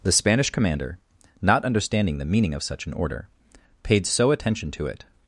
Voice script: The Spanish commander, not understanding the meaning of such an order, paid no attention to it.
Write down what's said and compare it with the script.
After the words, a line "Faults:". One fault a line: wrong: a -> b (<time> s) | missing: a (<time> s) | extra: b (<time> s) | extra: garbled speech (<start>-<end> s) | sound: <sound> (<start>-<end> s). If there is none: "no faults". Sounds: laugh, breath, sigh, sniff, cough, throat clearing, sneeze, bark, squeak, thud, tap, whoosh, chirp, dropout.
The Spanish commander, not understanding the meaning of such an order, paid so attention to it.
Faults:
wrong: no -> so (4.1 s)